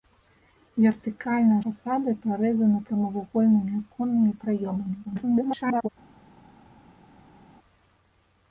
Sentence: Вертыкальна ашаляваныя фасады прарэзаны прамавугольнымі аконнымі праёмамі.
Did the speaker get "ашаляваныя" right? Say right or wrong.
wrong